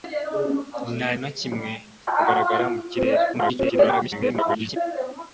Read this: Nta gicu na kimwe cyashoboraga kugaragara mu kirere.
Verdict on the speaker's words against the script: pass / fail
fail